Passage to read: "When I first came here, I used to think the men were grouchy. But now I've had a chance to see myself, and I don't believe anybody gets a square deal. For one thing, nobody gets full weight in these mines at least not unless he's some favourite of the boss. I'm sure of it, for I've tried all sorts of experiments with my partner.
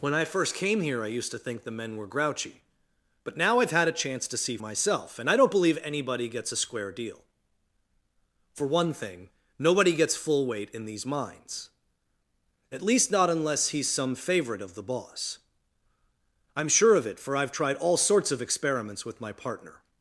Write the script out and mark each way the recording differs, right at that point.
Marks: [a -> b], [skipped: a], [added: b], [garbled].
"When I first came here, I used to think the men were grouchy. But now I've had a chance to see myself, and I don't believe anybody gets a square deal. For one thing, nobody gets full weight in these mines at least not unless he's some favourite of the boss. I'm sure of it, for I've tried all sorts of experiments with my partner.